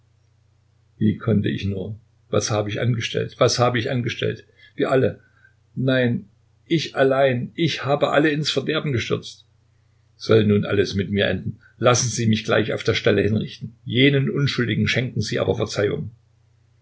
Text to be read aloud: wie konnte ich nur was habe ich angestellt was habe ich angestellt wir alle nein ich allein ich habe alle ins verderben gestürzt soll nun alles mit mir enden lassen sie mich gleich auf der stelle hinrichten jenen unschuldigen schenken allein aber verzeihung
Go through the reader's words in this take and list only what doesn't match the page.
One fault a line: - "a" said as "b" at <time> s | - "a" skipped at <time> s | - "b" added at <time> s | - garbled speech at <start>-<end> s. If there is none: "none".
- "allein" said as "sie" at 15.2 s